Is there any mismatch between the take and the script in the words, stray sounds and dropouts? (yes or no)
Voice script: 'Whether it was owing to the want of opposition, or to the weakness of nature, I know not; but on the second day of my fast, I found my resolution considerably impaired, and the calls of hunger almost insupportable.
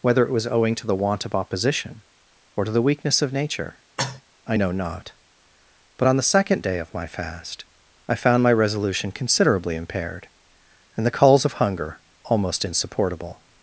yes